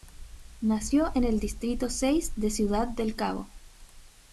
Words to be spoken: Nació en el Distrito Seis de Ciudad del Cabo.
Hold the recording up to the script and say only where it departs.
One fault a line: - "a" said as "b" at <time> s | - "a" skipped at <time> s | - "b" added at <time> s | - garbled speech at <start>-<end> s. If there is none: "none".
none